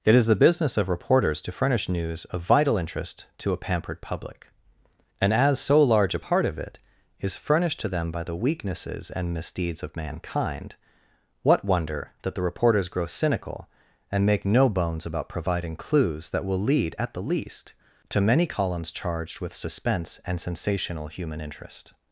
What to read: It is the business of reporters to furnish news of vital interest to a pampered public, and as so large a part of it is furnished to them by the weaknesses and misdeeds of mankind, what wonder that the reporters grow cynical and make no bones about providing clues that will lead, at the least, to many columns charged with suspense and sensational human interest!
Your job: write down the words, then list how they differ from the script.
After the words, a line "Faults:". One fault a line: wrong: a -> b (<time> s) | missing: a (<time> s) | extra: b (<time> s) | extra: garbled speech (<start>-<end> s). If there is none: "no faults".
It is the business of reporters to furnish news of vital interest to a pampered public, and as so large a part of it is furnished to them by the weaknesses and misdeeds of mankind, what wonder that the reporters grow cynical and make no bones about providing clues that will lead, at the least, to many columns charged with suspense and sensational human interest!
Faults:
no faults